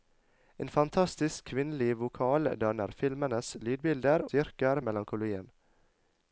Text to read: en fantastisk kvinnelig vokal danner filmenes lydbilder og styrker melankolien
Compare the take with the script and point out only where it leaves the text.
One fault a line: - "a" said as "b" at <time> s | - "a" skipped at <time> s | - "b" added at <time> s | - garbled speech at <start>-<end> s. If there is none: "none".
- "og" skipped at 4.2 s